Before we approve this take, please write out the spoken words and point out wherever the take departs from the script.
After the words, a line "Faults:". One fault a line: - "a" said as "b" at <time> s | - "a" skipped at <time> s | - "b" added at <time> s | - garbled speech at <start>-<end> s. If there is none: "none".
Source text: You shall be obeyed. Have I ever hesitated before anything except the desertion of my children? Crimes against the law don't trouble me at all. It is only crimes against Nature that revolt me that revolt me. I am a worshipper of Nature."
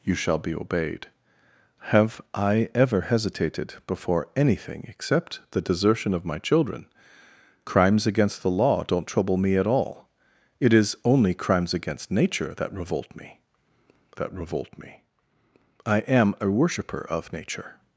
You shall be obeyed. Have I ever hesitated before anything except the desertion of my children? Crimes against the law don't trouble me at all. It is only crimes against Nature that revolt me that revolt me. I am a worshipper of Nature."
Faults:
none